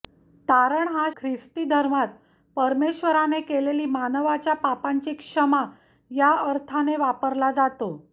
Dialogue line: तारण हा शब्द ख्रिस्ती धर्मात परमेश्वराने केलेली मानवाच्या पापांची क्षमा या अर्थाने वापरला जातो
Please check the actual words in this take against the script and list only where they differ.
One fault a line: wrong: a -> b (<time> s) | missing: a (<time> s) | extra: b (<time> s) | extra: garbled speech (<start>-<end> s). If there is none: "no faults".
missing: शब्द (1.1 s)